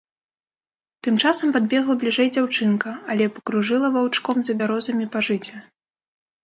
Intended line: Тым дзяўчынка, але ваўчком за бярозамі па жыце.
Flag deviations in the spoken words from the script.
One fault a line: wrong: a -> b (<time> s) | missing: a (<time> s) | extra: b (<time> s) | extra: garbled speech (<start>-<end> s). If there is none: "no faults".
extra: часам падбегла бліжэй (1.2 s)
extra: пакружыла (3.4 s)